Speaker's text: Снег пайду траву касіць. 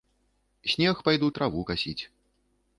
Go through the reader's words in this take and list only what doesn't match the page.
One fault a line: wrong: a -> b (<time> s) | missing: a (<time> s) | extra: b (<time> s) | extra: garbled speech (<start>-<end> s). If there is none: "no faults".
no faults